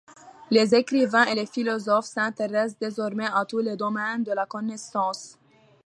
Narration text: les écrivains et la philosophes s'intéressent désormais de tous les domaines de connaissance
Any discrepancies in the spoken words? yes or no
yes